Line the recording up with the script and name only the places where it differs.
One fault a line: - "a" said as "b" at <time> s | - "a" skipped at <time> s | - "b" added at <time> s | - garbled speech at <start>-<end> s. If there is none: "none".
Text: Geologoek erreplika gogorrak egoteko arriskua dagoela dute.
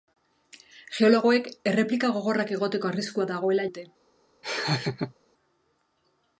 none